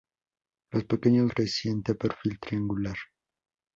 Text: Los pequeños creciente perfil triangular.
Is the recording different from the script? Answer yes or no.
no